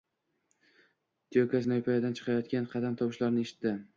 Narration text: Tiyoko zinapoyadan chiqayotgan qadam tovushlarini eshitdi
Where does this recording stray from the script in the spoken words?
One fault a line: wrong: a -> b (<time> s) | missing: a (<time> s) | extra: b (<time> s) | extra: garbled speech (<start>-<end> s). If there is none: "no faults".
no faults